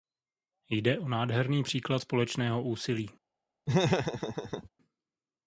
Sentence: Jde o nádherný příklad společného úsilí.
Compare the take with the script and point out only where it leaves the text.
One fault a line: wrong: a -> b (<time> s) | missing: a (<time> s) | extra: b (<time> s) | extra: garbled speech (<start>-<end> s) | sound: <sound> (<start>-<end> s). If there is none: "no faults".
sound: laugh (3.7-4.7 s)